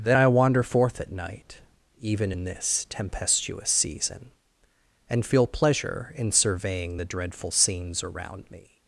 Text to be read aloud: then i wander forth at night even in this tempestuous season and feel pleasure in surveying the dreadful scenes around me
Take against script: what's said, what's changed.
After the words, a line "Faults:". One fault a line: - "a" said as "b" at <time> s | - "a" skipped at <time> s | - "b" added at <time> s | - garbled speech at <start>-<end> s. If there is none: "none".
then i wander forth at night even in this tempestuous season and feel pleasure in surveying the dreadful scenes around me
Faults:
none